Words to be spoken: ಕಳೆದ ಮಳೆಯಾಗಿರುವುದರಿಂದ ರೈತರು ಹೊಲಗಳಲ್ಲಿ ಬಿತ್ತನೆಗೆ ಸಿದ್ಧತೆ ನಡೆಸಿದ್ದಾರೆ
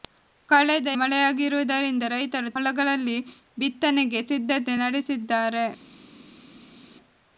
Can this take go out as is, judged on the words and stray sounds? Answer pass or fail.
pass